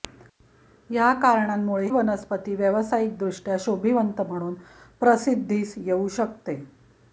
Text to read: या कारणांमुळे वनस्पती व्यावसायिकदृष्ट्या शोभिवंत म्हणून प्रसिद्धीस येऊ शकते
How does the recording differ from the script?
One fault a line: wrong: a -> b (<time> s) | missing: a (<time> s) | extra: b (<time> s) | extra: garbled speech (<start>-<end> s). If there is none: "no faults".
no faults